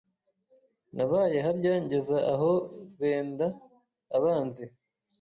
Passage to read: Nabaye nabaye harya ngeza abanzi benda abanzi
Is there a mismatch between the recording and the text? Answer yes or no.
yes